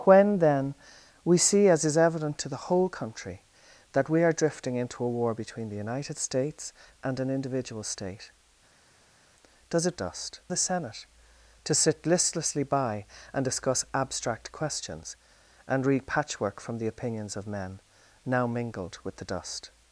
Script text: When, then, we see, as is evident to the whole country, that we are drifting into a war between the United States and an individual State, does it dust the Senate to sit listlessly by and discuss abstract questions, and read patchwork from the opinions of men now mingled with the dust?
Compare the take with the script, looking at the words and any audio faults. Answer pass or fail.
pass